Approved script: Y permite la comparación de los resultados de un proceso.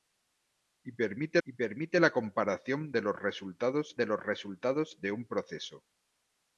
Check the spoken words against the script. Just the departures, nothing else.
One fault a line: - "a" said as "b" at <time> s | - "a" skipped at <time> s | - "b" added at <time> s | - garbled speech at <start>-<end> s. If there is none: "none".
- "y permite" added at 1.4 s
- "los resultados de" added at 4.1 s